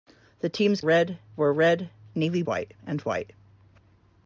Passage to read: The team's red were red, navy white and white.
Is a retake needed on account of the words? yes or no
no